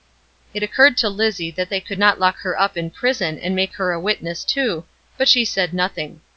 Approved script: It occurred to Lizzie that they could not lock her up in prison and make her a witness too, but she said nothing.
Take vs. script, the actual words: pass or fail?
pass